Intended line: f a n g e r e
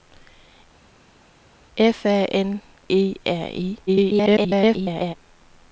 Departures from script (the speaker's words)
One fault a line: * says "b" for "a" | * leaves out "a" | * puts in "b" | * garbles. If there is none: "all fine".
* leaves out "g"
* garbles